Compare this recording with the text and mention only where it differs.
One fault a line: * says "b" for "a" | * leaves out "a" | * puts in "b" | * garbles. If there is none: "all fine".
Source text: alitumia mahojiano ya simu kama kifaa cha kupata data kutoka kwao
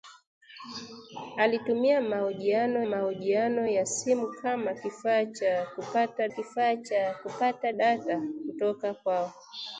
* puts in "mahojiano"
* puts in "kifaa cha kupata"